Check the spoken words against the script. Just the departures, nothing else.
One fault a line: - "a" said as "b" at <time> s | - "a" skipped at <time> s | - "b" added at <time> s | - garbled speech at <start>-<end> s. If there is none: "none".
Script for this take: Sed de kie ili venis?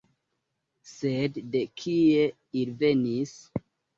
none